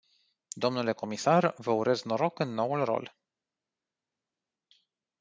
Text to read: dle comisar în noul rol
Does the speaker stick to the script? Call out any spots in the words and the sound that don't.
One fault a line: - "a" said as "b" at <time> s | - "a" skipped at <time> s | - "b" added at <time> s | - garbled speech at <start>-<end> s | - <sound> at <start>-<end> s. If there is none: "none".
- "vă urez noroc" added at 1.6 s